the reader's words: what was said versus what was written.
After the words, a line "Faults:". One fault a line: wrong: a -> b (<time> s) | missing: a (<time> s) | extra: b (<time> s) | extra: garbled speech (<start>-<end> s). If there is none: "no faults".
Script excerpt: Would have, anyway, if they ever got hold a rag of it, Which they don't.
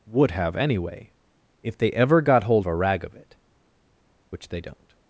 Would have, anyway, if they ever got hold a rag of it, Which they don't.
Faults:
no faults